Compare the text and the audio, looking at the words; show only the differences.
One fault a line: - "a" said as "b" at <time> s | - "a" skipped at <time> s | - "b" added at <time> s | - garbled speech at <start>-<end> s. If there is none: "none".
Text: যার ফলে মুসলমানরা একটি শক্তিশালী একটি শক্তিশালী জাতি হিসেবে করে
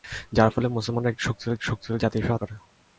none